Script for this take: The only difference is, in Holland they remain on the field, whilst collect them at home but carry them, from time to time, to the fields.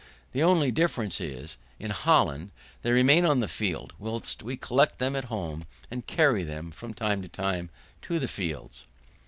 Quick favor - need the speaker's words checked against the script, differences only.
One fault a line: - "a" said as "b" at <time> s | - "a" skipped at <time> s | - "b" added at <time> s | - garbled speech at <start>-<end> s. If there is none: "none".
- "we" added at 4.4 s
- "but" said as "and" at 5.9 s